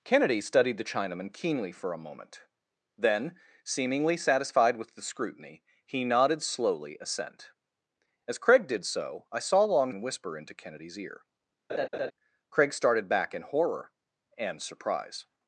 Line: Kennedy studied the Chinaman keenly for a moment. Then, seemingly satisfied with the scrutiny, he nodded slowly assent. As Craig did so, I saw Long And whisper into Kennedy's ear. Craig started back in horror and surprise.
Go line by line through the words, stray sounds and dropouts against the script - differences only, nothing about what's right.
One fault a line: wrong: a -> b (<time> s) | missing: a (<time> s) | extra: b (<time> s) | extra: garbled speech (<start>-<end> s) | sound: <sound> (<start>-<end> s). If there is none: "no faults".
sound: laugh (11.7-12.1 s)